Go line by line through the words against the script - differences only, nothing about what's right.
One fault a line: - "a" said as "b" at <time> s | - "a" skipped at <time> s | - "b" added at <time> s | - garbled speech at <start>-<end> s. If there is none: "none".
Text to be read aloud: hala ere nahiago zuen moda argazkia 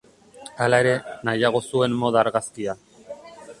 none